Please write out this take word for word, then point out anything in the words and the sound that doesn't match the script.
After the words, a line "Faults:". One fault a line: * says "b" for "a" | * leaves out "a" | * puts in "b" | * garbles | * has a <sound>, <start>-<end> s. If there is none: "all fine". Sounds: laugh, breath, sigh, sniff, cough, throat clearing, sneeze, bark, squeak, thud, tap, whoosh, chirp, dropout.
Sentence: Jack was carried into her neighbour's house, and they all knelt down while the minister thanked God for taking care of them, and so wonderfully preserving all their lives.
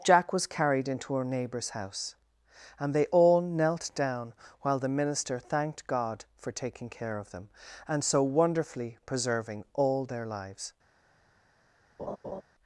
Jack was carried into her neighbour's house, and they all knelt down while the minister thanked God for taking care of them, and so wonderfully preserving all their lives.
Faults:
* has a laugh, 12.0-12.4 s